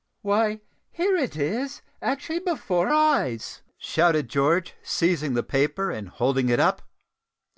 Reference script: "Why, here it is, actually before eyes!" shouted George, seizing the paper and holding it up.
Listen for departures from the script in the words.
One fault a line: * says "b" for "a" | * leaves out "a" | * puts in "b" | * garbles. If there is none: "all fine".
all fine